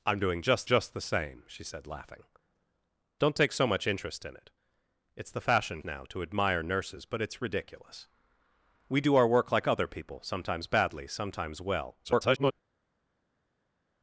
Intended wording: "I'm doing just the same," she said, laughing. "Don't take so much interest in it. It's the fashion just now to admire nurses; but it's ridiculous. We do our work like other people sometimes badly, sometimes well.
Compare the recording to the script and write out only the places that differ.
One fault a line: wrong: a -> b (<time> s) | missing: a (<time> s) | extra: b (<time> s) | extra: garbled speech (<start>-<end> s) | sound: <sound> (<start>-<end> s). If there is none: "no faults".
extra: just (0.6 s)
missing: just (5.8 s)
extra: garbled speech (12.0-12.5 s)